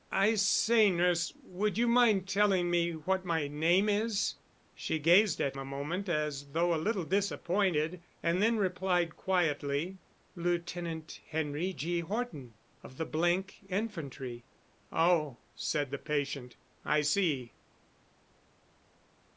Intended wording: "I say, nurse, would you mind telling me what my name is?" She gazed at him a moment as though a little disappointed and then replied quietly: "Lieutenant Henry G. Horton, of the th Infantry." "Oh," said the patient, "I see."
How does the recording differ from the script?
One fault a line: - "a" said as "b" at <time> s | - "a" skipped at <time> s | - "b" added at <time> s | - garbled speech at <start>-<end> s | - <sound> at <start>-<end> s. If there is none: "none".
- "him" skipped at 5.6 s